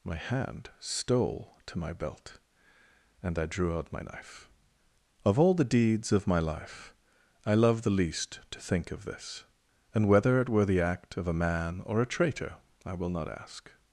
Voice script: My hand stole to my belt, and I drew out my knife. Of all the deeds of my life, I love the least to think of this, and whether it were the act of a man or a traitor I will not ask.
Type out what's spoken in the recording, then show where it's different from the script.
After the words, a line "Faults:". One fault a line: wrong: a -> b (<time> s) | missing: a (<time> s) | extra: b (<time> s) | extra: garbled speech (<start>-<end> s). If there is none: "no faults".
My hand stole to my belt, and I drew out my knife. Of all the deeds of my life, I love the least to think of this, and whether it were the act of a man or a traitor I will not ask.
Faults:
no faults